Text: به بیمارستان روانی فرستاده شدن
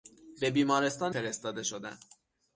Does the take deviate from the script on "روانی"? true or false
true